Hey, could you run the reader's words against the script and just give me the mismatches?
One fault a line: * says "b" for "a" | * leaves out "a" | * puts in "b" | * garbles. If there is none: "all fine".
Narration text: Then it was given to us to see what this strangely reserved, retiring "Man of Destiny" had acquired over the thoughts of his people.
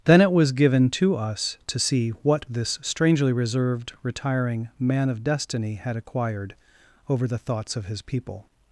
all fine